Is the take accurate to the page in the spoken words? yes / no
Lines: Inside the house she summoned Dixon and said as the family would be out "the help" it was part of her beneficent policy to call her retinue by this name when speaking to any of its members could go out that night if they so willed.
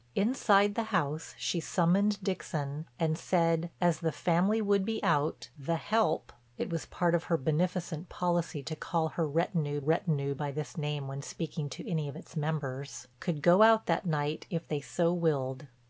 no